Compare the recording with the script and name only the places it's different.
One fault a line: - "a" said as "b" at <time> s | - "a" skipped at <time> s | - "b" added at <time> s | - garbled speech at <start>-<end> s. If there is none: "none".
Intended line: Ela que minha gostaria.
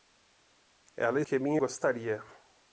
none